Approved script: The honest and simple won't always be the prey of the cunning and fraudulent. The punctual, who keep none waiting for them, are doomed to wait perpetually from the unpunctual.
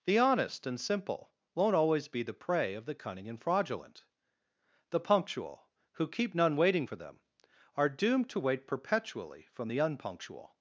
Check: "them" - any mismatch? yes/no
no